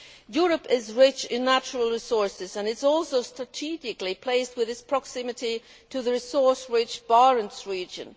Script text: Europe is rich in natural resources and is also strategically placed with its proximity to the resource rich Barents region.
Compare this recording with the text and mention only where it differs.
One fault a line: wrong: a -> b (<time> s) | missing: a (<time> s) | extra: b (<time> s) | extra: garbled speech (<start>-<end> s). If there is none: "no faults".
no faults